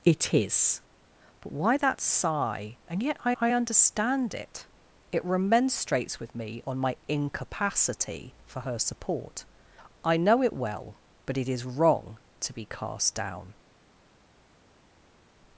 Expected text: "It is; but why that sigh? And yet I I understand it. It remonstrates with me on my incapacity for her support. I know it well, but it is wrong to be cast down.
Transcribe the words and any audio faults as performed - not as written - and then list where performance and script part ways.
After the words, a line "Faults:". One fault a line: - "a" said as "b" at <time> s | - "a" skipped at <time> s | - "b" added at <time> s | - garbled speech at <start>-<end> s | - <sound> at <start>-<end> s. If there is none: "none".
"It is; but why that sigh? And yet I I understand it. It remonstrates with me on my incapacity for her support. I know it well, but it is wrong to be cast down.
Faults:
none